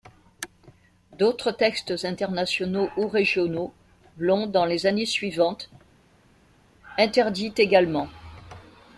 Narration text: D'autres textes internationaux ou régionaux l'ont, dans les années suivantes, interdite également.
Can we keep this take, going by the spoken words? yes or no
yes